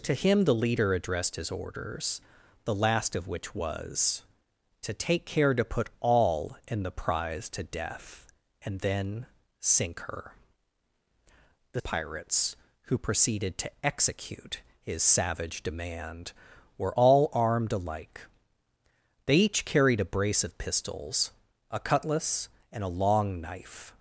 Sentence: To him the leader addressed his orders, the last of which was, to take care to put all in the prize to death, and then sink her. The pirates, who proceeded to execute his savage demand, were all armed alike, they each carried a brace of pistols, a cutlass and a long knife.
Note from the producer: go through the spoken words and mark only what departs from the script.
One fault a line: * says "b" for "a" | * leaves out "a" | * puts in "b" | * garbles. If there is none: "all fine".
all fine